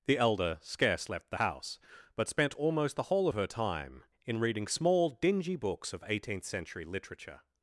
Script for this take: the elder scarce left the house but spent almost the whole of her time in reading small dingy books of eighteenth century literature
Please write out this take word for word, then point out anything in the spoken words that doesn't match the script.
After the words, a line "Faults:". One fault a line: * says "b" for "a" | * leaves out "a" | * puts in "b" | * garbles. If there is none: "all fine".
the elder scarce left the house but spent almost the whole of her time in reading small dingy books of eighteenth century literature
Faults:
all fine